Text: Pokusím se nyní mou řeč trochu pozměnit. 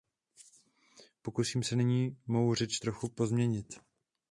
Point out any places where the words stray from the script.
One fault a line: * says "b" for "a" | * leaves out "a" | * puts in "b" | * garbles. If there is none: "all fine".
all fine